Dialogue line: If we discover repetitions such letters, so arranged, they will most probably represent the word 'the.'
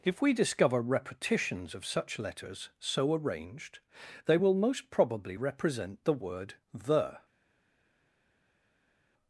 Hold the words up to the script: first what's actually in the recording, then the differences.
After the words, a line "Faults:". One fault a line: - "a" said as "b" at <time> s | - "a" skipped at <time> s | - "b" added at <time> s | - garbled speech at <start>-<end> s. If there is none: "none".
If we discover repetitions of such letters, so arranged, they will most probably represent the word 'the.'
Faults:
- "of" added at 1.8 s